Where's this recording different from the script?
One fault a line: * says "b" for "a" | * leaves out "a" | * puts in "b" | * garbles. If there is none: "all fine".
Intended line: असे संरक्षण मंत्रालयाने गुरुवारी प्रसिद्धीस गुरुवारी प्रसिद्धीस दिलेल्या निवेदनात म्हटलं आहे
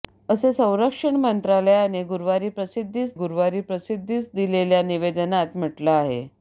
all fine